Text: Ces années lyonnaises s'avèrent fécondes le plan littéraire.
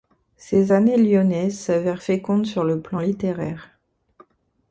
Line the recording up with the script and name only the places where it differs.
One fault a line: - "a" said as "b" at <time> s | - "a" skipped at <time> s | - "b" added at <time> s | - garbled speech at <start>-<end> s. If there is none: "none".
- "sur" added at 2.4 s